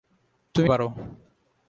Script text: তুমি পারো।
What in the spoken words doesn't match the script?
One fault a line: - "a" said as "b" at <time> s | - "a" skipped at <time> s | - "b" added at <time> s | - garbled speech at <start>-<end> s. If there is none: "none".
none